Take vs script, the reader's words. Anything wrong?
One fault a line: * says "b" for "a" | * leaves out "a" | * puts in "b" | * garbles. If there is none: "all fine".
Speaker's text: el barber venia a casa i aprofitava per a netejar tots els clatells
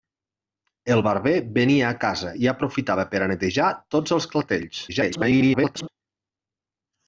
* garbles